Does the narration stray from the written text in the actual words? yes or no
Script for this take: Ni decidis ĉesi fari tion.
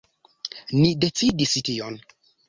yes